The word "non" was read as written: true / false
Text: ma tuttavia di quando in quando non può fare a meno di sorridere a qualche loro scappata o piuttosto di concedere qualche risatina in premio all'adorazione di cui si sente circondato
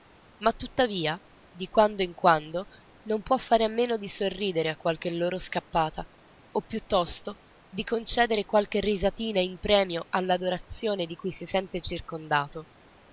true